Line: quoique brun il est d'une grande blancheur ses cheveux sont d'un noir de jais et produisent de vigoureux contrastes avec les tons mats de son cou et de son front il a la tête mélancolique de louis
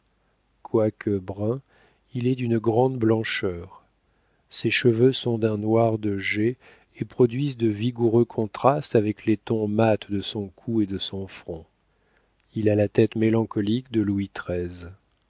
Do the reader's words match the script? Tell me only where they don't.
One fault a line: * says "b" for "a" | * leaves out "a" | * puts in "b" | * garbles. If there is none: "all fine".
all fine